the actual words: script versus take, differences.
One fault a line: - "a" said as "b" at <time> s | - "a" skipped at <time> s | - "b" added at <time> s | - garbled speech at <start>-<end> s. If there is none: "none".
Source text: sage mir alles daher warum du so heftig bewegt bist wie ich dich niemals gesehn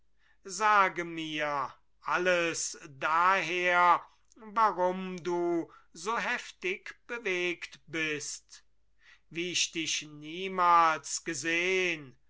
none